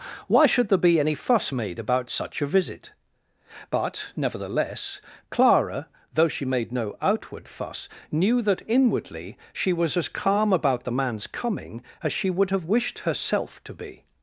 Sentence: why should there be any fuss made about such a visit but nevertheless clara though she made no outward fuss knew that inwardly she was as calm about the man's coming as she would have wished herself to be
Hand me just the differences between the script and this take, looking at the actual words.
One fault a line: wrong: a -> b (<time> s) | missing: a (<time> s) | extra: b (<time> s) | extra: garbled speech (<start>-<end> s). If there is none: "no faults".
no faults